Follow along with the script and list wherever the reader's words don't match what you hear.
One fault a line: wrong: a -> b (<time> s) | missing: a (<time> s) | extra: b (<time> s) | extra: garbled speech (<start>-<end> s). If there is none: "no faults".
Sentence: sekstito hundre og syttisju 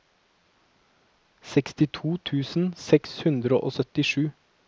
extra: tusen seks (2.3 s)